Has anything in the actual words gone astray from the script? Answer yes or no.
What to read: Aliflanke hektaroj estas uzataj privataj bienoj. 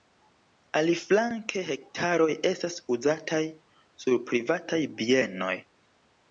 yes